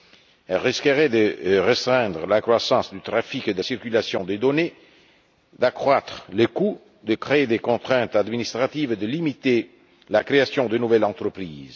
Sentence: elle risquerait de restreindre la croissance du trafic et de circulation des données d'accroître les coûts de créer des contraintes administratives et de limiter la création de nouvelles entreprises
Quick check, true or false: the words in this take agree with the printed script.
true